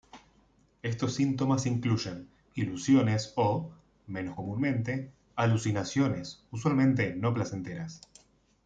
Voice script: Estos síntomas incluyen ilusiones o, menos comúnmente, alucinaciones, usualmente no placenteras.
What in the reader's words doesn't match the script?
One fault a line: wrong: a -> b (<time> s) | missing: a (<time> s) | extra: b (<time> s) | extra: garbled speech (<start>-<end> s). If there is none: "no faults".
no faults